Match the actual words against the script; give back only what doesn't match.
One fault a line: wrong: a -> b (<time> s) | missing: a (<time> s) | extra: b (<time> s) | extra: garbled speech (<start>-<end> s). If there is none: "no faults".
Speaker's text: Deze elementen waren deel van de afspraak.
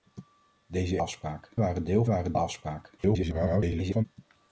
wrong: elementen -> afspraak (1.0 s)
wrong: van -> waren (2.1 s)
extra: garbled speech (3.0-4.1 s)